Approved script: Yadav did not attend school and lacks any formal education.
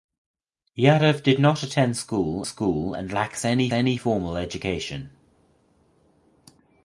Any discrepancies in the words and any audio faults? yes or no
yes